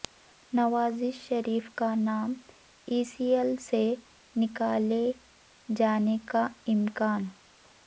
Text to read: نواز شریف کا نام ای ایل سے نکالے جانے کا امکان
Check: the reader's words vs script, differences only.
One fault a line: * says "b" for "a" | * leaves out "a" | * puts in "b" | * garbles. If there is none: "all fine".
* puts in "سی"